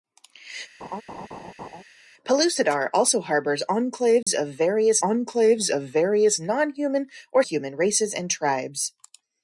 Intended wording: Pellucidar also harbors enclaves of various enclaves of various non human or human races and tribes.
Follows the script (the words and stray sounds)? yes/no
no